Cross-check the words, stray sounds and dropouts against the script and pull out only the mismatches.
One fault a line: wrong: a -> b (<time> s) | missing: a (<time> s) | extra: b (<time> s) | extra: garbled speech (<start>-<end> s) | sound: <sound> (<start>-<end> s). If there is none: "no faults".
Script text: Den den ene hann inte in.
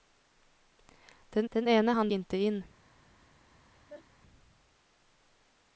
sound: laugh (3.7-4.1 s)